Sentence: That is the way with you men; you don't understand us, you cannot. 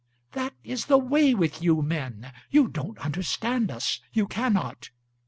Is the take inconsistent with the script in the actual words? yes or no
no